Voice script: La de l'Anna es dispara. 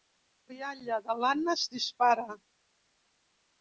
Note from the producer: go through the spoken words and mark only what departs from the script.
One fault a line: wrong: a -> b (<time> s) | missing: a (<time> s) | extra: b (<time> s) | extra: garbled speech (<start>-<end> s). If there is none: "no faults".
extra: rialla (0.5 s)